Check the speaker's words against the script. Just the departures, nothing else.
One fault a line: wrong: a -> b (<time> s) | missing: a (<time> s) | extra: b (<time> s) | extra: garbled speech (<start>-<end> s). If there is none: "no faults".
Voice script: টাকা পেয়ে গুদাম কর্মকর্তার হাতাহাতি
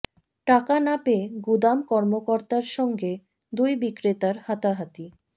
extra: না (0.8 s)
extra: সঙ্গে দুই বিক্রেতার (2.8 s)